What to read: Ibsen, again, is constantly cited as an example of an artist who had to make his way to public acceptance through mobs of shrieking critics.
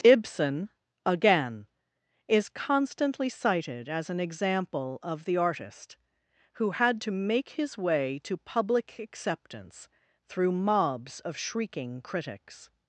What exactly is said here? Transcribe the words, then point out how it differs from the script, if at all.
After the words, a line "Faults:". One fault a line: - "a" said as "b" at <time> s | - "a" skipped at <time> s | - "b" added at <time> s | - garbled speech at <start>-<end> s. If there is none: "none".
Ibsen, again, is constantly cited as an example of the artist who had to make his way to public acceptance through mobs of shrieking critics.
Faults:
- "an" said as "the" at 5.2 s